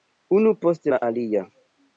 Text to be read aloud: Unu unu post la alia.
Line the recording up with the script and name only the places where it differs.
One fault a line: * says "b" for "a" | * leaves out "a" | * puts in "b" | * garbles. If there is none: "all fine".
* leaves out "unu"